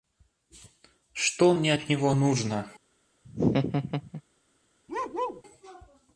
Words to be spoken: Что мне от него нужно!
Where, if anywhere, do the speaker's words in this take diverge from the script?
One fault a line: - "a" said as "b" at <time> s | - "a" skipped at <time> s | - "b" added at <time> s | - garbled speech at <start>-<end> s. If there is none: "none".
none